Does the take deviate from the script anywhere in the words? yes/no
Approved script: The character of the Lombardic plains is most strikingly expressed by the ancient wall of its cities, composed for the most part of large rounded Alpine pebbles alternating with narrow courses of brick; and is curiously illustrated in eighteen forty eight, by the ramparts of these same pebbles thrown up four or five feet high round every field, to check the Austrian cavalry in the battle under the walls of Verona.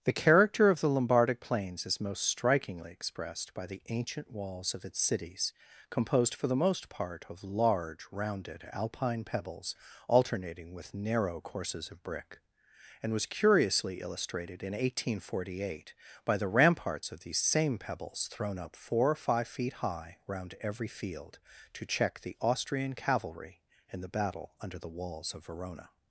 yes